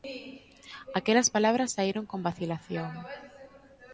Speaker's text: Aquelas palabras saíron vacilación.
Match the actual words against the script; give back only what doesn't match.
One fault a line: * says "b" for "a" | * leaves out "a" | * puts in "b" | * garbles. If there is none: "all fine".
* puts in "con"